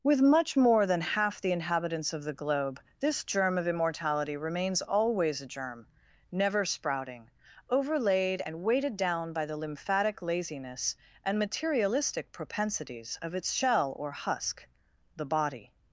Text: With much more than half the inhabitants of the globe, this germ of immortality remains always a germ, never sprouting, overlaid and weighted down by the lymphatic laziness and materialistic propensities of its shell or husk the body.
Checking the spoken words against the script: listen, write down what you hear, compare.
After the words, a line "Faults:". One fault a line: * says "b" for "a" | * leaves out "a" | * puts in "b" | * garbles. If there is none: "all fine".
With much more than half the inhabitants of the globe, this germ of immortality remains always a germ, never sprouting, overlaid and weighted down by the lymphatic laziness and materialistic propensities of its shell or husk the body.
Faults:
all fine